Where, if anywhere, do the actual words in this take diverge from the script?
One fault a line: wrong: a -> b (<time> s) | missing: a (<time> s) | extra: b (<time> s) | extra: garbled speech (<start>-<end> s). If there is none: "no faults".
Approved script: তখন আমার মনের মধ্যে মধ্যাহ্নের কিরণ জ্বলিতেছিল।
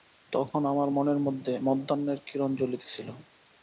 no faults